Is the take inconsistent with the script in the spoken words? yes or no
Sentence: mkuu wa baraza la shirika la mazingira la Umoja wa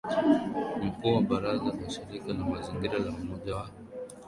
no